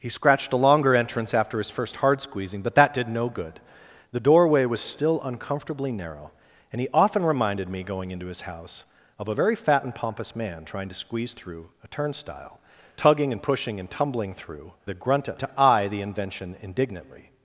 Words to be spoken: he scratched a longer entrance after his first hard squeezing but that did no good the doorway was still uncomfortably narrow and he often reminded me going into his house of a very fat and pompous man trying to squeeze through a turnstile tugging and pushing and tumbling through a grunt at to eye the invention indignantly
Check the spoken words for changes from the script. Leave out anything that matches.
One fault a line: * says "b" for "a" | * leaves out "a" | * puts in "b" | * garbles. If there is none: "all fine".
all fine